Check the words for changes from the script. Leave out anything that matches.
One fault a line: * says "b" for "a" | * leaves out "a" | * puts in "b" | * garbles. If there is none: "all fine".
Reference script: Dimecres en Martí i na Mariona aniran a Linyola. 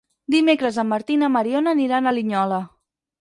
all fine